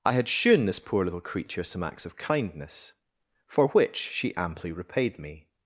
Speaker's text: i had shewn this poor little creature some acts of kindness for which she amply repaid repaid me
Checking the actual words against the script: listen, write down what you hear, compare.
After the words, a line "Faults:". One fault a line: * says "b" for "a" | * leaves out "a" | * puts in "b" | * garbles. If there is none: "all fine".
i had shewn this poor little creature some acts of kindness for which she amply repaid me
Faults:
* leaves out "repaid"